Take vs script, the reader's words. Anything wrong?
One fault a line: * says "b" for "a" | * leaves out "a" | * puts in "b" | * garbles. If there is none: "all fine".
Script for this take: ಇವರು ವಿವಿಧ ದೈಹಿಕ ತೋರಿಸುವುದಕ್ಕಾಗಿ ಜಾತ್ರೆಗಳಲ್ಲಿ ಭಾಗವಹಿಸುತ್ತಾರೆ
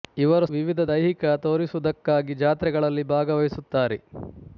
all fine